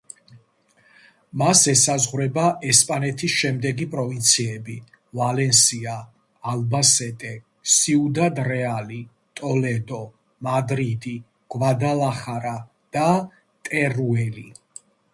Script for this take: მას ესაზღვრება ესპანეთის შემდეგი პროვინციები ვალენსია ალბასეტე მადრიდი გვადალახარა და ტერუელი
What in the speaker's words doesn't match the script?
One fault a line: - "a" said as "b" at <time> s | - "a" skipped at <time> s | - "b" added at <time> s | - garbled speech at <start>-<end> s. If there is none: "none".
- "სიუდად რეალი ტოლედო" added at 7.8 s